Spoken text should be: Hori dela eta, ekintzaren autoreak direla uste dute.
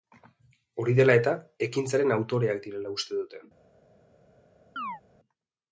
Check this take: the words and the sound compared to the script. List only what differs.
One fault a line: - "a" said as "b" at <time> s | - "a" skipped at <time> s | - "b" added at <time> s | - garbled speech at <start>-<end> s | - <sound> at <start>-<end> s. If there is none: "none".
- chirp at 4.8-5.0 s